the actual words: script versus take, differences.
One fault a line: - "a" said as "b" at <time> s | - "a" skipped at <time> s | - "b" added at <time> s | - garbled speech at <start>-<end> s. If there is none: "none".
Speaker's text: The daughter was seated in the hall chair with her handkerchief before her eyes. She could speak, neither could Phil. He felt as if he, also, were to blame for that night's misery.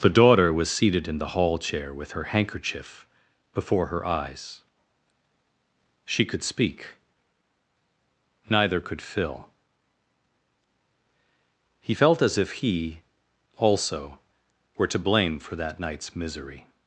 none